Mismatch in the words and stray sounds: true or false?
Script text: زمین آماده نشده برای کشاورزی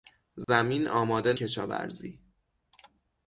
true